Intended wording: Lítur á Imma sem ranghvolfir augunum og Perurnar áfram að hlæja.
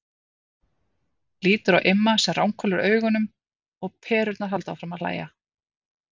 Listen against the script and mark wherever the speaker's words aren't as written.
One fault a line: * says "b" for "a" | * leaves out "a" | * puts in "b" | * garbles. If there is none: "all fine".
* puts in "halda"